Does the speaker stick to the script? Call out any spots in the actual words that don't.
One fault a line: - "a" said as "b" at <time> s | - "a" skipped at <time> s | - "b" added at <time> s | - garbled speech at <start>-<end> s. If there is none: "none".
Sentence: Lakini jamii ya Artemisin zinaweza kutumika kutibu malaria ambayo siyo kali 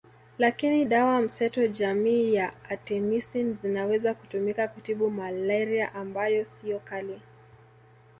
- "dawa mseto" added at 0.8 s